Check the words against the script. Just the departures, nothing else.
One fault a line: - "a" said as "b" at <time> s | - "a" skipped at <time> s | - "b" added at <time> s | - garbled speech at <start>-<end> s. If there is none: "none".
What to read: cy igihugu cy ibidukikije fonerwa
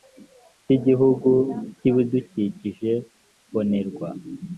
none